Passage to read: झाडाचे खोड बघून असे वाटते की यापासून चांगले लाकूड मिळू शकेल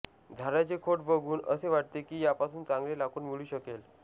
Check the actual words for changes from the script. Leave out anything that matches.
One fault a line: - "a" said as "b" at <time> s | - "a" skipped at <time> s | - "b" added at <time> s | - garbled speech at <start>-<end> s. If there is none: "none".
none